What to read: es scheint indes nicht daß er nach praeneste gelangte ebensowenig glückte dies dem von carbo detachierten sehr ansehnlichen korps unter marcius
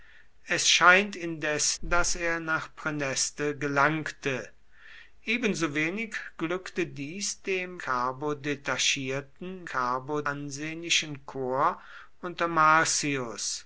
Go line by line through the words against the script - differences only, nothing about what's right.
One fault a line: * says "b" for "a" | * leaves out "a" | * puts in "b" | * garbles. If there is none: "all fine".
* leaves out "nicht"
* leaves out "von"
* says "carbo" for "sehr"